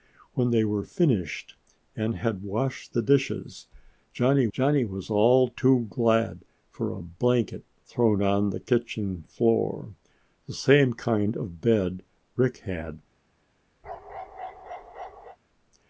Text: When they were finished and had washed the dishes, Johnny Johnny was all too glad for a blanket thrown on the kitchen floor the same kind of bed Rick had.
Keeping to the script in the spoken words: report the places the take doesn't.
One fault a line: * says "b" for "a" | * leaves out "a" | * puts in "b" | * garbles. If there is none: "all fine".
all fine